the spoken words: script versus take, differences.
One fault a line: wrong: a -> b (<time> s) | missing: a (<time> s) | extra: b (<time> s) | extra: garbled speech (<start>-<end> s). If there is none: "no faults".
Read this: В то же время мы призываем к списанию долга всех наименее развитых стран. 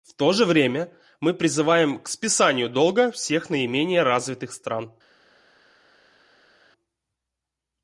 no faults